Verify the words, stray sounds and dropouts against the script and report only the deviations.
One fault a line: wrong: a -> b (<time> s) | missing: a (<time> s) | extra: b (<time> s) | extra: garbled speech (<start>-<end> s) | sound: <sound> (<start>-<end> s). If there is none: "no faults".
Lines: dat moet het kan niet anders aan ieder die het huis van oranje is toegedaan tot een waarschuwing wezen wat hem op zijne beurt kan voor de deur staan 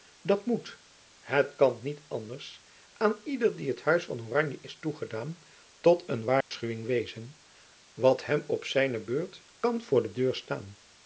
sound: dropout (6.4-6.5 s)